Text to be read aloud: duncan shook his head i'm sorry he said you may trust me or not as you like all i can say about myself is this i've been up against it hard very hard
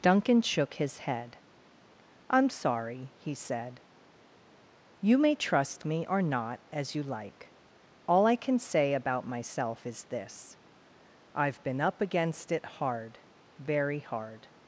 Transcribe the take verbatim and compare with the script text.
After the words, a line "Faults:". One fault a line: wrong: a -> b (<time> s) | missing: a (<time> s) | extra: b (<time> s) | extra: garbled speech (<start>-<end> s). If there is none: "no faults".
duncan shook his head i'm sorry he said you may trust me or not as you like all i can say about myself is this i've been up against it hard very hard
Faults:
no faults